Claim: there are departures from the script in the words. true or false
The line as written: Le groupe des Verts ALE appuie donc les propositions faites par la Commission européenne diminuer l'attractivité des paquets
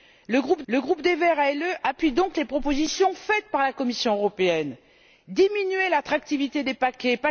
true